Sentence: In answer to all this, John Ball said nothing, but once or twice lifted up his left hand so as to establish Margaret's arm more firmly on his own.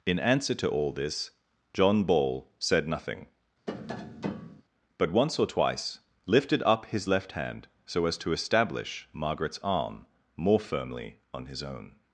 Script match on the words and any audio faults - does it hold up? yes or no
no